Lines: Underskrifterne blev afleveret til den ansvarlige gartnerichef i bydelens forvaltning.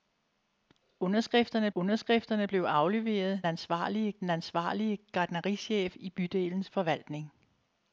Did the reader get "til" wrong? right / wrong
wrong